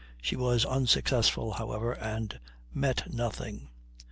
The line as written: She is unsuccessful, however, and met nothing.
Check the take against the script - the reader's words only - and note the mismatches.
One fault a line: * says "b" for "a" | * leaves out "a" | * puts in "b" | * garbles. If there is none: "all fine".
* says "was" for "is"